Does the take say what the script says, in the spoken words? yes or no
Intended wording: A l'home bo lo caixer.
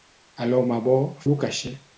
yes